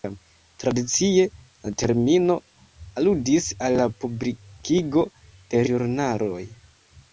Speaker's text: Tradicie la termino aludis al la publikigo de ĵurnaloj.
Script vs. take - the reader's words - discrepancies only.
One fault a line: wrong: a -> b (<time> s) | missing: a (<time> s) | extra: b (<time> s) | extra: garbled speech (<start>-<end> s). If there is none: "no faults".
no faults